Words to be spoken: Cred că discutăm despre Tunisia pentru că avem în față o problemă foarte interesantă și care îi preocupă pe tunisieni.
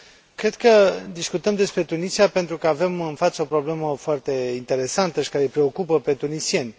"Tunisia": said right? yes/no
yes